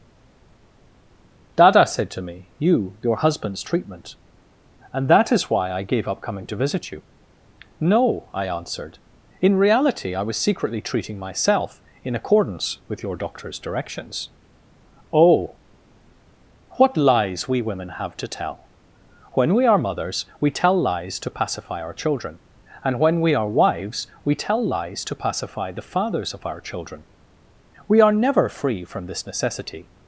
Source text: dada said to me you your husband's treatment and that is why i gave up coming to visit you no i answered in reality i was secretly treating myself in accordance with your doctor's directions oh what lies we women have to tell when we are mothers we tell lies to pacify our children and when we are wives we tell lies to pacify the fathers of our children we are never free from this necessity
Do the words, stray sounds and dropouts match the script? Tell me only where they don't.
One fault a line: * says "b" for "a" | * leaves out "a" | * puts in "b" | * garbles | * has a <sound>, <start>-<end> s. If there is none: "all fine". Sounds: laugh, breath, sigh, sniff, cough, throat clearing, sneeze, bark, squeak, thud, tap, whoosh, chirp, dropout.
all fine